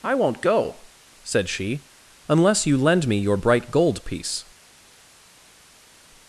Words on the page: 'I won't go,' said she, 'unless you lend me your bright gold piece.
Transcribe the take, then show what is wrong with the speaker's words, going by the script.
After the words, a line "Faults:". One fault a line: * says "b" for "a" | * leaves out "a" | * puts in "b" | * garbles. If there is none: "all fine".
'I won't go,' said she, 'unless you lend me your bright gold piece.
Faults:
all fine